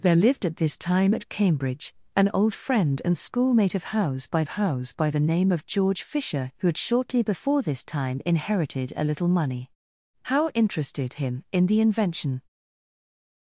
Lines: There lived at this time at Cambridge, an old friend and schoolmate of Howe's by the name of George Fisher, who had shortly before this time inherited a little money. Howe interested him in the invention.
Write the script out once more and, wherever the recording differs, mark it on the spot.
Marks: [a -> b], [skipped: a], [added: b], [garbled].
There lived at this time at Cambridge, an old friend and schoolmate of Howe's by [added: Howe's by] the name of George Fisher, who had shortly before this time inherited a little money. Howe interested him in the invention.